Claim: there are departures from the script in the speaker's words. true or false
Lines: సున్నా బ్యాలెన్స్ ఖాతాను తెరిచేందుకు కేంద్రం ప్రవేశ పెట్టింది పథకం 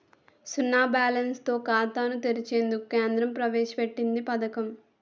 true